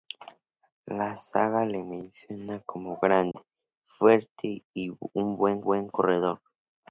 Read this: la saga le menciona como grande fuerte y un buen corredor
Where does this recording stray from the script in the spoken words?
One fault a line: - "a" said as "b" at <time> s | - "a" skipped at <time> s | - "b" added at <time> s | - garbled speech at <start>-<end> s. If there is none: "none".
- "buen" added at 5.6 s